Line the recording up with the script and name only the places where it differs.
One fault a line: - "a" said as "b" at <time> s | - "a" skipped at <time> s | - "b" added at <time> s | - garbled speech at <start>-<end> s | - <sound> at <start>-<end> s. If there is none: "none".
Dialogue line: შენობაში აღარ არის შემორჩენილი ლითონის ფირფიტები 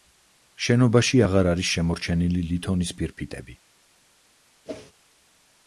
- whoosh at 4.7-4.9 s